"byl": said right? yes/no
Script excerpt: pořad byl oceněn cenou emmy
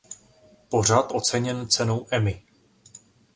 no